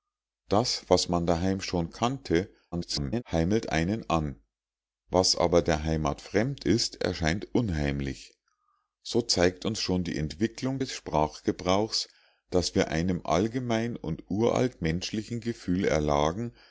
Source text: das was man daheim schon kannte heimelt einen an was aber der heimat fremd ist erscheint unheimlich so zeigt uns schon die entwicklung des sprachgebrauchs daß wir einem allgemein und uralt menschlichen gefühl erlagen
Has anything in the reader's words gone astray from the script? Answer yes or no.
yes